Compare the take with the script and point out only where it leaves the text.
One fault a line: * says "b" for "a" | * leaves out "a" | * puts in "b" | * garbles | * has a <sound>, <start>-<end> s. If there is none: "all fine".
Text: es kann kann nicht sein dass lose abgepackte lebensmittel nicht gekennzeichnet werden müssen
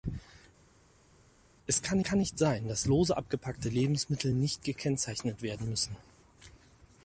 all fine